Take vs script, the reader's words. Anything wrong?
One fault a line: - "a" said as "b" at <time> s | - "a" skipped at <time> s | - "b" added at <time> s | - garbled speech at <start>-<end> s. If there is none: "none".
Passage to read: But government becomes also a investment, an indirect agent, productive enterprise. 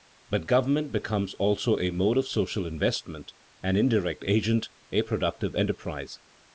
- "mode of social" added at 1.9 s
- "a" added at 4.9 s